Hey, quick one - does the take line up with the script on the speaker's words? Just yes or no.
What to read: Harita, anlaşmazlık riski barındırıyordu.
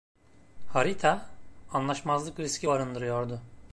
yes